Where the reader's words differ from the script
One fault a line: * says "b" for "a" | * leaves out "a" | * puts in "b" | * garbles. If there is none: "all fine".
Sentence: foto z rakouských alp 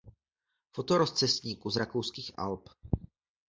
* puts in "rozcestníku"